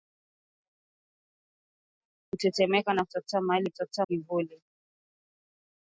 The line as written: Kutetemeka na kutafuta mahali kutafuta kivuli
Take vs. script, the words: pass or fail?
pass